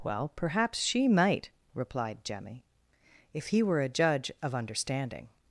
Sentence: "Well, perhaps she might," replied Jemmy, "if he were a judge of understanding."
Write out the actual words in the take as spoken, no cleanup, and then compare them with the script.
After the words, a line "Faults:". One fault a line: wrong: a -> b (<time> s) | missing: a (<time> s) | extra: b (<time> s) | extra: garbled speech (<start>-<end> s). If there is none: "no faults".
"Well, perhaps she might," replied Jemmy, "if he were a judge of understanding."
Faults:
no faults